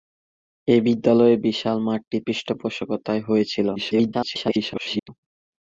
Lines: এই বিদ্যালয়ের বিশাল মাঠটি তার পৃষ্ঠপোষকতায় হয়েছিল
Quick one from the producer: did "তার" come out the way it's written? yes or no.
no